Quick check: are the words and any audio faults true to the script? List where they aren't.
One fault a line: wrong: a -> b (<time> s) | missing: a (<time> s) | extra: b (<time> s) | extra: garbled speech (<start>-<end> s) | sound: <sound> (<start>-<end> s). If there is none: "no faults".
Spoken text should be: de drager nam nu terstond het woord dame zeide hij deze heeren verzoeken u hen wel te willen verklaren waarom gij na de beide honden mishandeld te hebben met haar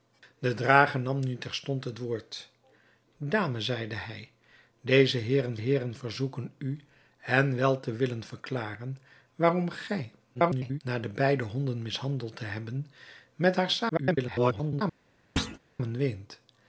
extra: heeren (5.5 s)
extra: garbled speech (10.3-10.8 s)
extra: garbled speech (13.9-14.8 s)
sound: thud (15.4-15.6 s)